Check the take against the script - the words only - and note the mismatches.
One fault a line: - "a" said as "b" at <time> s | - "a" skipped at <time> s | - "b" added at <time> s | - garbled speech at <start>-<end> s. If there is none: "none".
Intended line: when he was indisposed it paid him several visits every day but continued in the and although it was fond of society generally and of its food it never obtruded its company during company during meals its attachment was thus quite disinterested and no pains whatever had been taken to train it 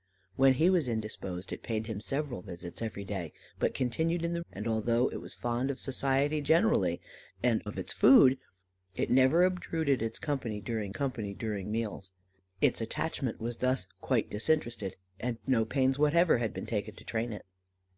none